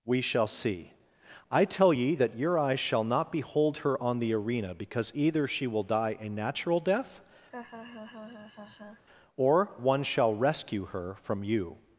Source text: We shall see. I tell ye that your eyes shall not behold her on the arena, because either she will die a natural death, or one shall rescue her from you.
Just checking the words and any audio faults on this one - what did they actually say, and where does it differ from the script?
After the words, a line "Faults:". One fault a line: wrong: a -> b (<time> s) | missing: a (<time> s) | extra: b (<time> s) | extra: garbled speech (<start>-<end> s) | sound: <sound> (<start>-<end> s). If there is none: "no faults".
We shall see. I tell ye that your eyes shall not behold her on the arena, because either she will die a natural death, or one shall rescue her from you.
Faults:
sound: laugh (7.5-9.0 s)